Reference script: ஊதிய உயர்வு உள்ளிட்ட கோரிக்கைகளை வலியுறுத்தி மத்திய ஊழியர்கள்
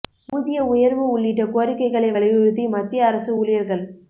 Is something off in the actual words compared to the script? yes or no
yes